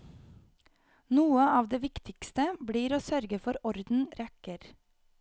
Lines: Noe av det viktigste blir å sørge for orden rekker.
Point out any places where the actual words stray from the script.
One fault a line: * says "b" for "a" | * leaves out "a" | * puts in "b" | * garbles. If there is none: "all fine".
all fine